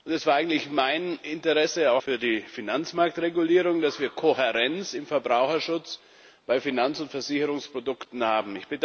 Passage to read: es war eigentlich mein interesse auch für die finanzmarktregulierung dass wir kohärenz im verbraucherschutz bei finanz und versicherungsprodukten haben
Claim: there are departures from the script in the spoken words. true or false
false